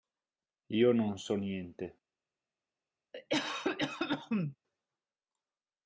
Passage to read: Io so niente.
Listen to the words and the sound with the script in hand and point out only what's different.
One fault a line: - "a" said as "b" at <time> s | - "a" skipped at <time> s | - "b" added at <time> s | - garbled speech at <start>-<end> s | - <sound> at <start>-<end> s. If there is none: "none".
- "non" added at 0.9 s
- cough at 3.1-4.6 s